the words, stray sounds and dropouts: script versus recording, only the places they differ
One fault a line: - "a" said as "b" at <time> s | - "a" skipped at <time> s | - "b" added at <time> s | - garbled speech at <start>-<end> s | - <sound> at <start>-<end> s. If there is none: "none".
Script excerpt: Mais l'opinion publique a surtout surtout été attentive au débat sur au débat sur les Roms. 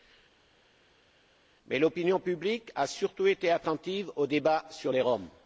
- "surtout" skipped at 3.3 s
- "au débat sur" skipped at 4.9 s